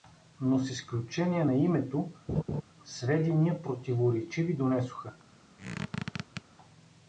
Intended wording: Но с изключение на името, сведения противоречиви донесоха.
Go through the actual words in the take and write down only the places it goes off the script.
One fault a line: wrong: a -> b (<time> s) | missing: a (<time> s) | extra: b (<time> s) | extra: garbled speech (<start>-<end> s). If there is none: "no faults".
no faults